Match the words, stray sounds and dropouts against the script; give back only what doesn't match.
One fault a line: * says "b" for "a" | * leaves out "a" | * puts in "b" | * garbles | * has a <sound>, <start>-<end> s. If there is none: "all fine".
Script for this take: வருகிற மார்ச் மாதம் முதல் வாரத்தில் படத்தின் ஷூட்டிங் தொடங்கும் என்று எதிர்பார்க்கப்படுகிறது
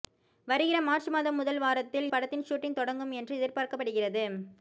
all fine